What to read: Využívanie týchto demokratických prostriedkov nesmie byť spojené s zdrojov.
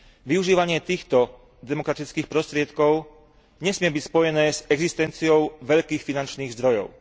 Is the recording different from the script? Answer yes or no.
yes